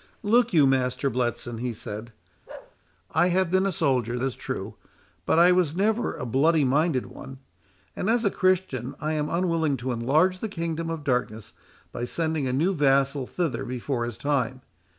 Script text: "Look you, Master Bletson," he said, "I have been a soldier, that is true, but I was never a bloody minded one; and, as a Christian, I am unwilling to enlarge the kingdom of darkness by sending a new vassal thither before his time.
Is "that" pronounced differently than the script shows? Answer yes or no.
yes